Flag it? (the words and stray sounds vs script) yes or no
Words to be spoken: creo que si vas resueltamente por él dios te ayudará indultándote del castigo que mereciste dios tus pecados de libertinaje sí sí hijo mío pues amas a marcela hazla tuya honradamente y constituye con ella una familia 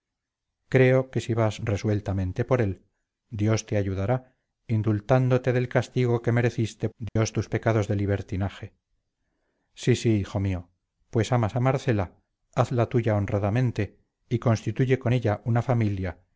yes